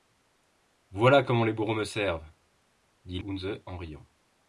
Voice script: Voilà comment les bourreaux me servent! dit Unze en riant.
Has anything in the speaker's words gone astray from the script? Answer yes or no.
no